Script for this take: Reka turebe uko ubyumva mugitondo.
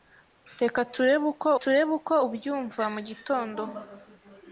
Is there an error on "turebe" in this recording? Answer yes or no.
no